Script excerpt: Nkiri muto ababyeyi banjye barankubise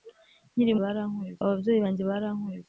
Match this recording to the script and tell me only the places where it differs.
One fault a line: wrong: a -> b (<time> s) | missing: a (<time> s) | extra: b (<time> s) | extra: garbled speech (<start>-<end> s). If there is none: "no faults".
wrong: muto -> barankubise (0.8 s)